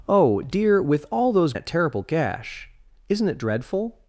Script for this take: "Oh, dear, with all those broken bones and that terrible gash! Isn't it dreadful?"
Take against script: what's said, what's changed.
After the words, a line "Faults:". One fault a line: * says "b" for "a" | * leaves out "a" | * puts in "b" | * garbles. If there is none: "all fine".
"Oh, dear, with all those that terrible gash! Isn't it dreadful?"
Faults:
* leaves out "broken bones and"